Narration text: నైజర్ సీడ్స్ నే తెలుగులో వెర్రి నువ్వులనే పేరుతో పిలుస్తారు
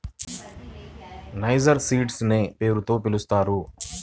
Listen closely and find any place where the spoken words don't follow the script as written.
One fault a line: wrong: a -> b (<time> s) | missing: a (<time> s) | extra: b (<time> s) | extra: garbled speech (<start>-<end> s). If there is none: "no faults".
missing: తెలుగులో వెర్రి నువ్వులనే (2.4 s)